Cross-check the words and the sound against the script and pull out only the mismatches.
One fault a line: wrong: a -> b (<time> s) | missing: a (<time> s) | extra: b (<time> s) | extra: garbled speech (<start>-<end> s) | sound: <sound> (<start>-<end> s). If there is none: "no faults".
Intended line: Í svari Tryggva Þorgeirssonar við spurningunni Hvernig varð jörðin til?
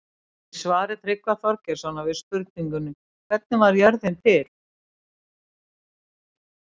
no faults